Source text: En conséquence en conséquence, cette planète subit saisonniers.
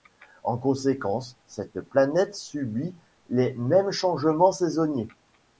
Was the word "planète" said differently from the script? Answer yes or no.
no